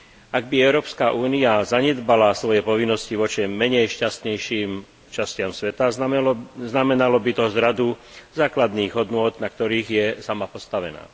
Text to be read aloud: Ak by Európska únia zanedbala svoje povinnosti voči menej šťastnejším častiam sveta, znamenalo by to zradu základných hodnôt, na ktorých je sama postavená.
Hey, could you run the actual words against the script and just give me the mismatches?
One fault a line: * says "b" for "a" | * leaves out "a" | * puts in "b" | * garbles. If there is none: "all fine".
all fine